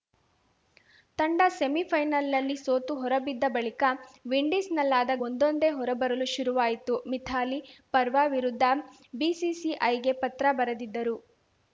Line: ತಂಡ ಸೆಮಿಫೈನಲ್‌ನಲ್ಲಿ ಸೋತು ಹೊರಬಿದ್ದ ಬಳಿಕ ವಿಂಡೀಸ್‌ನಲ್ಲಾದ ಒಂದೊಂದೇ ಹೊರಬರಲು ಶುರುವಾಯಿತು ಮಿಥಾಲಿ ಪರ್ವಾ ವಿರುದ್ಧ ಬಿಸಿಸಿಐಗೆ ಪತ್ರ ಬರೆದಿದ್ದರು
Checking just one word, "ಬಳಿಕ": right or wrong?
right